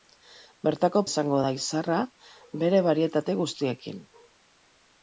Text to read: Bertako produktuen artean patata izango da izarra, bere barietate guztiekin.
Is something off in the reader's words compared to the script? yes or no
yes